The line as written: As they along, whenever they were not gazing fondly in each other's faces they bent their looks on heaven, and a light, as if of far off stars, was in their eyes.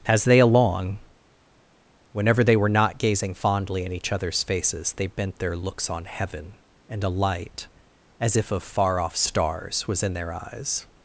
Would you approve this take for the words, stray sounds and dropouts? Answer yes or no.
yes